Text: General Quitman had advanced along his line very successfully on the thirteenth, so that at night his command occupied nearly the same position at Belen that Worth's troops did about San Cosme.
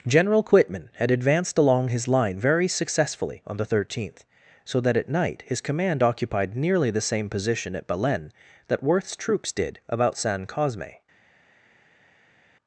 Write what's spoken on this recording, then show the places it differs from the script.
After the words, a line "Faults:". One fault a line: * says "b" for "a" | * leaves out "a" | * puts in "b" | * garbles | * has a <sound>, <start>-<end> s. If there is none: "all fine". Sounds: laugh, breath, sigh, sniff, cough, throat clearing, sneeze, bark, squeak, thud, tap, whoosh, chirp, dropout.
General Quitman had advanced along his line very successfully on the thirteenth, so that at night his command occupied nearly the same position at Belen that Worth's troops did about San Cosme.
Faults:
all fine